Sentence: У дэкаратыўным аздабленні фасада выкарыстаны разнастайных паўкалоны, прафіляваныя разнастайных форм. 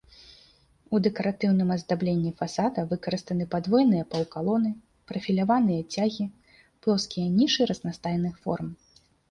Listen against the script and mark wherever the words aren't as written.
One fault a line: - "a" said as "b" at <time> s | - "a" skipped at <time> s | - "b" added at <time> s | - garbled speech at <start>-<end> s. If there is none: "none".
- "разнастайных" said as "падвойныя" at 3.5 s
- "цягі плоскія нішы" added at 5.9 s